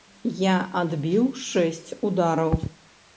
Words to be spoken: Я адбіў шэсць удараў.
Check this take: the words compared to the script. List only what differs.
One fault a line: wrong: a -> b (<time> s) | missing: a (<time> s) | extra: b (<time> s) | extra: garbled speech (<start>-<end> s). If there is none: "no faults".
no faults